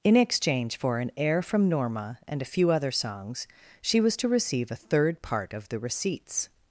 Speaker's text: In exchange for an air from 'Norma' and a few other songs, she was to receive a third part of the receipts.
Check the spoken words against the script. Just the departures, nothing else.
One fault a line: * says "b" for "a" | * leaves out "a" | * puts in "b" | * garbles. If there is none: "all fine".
all fine